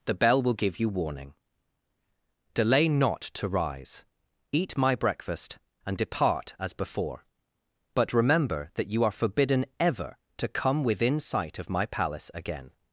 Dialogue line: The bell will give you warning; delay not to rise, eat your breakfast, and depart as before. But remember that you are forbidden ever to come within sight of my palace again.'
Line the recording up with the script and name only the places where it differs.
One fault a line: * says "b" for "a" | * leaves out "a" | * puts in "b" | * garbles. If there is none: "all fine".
* says "my" for "your"